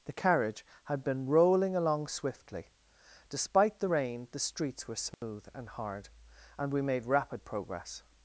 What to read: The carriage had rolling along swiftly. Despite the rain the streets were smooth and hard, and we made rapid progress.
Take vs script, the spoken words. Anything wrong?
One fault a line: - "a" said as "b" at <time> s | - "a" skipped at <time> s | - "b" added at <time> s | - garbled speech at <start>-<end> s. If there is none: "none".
- "been" added at 1.0 s